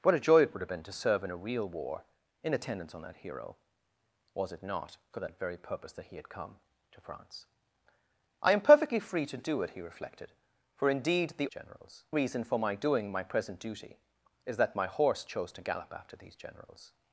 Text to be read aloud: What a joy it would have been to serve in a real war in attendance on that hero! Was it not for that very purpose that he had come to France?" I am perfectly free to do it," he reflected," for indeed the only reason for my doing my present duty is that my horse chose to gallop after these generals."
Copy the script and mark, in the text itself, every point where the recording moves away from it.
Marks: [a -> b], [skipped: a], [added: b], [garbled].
What a joy it would have been to serve in a real war in attendance on that hero! Was it not for that very purpose that he had come to France?" I am perfectly free to do it," he reflected," for indeed the [only -> generals] reason for my doing my present duty is that my horse chose to gallop after these generals."